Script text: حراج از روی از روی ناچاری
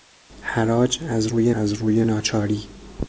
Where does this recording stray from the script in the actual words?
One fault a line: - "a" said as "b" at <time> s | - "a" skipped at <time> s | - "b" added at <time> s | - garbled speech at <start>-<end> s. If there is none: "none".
none